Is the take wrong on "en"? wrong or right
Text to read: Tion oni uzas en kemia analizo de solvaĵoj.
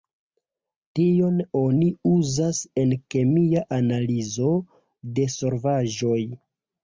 right